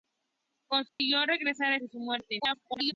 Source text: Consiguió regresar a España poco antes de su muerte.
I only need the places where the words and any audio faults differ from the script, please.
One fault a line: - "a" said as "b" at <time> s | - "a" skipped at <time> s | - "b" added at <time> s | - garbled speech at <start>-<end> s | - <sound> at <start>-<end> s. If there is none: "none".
- dropout at 0.9-1.0 s
- "España poco antes" skipped at 1.8 s
- garbled speech at 2.4-2.9 s